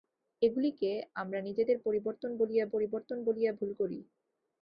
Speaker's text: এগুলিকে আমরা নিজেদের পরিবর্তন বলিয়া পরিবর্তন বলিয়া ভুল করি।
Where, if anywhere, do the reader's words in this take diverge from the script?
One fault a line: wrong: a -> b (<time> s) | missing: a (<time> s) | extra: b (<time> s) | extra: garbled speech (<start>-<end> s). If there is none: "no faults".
no faults